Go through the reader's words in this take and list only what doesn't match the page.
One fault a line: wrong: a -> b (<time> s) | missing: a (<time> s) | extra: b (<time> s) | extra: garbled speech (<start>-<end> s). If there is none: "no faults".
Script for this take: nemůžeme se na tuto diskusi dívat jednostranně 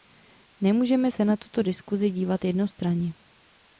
no faults